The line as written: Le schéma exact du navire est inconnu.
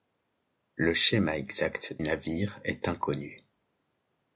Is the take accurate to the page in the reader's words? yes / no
no